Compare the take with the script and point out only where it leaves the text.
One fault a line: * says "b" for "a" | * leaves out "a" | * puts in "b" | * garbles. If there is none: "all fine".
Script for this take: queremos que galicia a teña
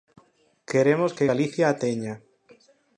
all fine